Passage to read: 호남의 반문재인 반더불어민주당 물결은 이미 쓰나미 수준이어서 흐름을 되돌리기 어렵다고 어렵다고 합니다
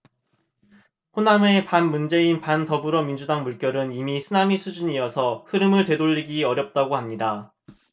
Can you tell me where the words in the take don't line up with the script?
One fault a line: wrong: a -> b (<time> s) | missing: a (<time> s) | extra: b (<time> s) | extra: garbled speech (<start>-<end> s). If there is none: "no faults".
missing: 어렵다고 (6.9 s)